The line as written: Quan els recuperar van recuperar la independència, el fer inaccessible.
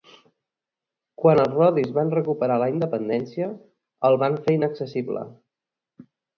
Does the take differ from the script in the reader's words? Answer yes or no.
yes